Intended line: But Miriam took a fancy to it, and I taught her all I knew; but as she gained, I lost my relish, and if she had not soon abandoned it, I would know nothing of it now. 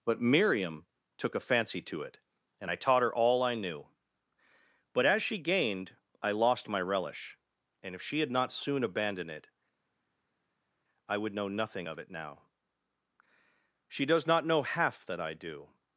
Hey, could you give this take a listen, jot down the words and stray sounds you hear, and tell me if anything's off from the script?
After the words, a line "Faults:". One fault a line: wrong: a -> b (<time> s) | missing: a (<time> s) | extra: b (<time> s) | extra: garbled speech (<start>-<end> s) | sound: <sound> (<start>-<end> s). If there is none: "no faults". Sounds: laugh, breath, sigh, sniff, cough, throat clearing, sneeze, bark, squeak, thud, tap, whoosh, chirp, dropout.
But Miriam took a fancy to it, and I taught her all I knew; but as she gained, I lost my relish, and if she had not soon abandoned it, I would know nothing of it now. She does not know half that I do
Faults:
extra: She does not know half that I do (13.9 s)